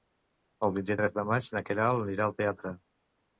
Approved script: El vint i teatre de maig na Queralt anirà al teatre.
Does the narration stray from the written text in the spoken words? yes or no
yes